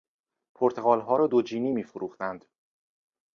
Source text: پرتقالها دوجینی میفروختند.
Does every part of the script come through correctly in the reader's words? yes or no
no